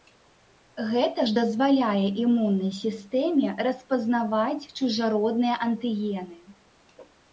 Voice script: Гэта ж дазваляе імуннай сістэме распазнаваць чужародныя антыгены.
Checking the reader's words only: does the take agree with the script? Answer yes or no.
yes